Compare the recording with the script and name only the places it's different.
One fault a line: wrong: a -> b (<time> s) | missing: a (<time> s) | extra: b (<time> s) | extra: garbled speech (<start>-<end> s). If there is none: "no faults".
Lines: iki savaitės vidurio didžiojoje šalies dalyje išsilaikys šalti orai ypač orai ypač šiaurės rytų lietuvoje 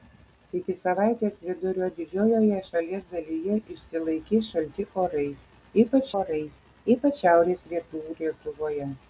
no faults